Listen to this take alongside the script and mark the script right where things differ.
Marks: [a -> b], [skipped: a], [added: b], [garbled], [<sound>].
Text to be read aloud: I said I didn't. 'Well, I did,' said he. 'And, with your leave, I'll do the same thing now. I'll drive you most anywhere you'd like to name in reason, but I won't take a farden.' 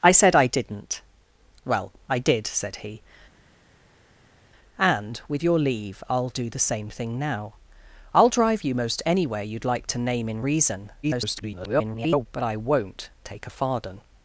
I said I didn't. 'Well, I did,' said he. 'And, with your leave, I'll do the same thing now. I'll drive you most anywhere you'd like to name in reason, [garbled] but I won't take a farden.'